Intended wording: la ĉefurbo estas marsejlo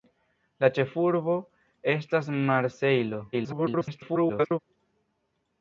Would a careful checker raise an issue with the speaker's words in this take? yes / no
yes